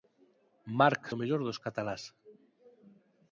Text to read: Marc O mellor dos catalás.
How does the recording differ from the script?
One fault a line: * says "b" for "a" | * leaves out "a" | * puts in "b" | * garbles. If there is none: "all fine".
all fine